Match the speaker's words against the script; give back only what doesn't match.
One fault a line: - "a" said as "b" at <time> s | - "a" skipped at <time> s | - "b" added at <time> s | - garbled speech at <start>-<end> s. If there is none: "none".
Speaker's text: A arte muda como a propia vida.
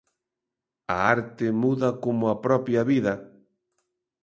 none